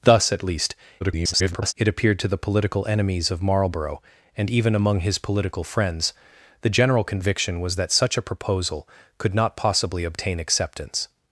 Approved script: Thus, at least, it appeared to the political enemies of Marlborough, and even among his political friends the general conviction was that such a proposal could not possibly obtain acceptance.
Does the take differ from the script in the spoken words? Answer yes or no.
yes